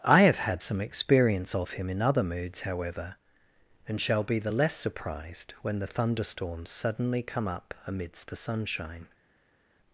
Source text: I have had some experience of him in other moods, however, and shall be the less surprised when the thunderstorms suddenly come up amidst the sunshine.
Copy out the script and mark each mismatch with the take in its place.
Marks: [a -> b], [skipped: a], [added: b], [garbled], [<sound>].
I have had some experience of him in other moods, however, and shall be the less surprised when the thunderstorms suddenly come up amidst the sunshine.